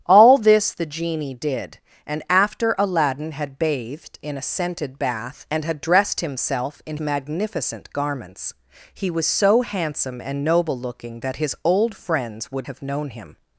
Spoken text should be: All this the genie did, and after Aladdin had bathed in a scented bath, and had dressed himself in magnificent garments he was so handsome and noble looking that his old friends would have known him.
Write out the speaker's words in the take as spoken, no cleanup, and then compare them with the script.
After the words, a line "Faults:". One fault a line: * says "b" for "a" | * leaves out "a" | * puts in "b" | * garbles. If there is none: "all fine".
All this the genie did, and after Aladdin had bathed in a scented bath, and had dressed himself in magnificent garments he was so handsome and noble looking that his old friends would have known him.
Faults:
all fine